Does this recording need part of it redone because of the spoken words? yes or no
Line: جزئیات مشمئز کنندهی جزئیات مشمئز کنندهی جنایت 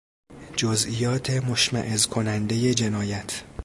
yes